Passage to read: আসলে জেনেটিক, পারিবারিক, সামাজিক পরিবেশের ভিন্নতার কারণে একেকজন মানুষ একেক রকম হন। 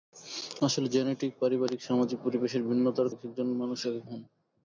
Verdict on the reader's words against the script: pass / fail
fail